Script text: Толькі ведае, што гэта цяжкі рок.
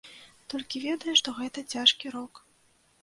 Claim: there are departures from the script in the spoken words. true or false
false